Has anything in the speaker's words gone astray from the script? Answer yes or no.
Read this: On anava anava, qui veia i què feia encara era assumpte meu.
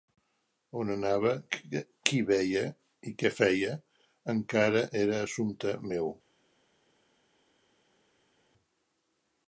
yes